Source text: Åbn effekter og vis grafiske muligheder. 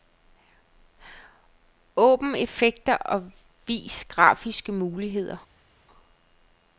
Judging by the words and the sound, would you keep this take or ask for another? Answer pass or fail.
pass